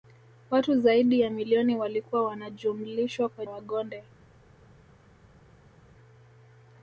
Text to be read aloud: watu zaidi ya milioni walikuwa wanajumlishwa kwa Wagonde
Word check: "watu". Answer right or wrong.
right